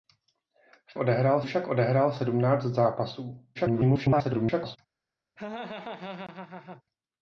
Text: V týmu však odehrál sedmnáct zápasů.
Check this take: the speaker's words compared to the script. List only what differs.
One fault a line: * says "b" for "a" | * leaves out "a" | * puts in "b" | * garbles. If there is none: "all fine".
* says "odehrál" for "týmu"
* garbles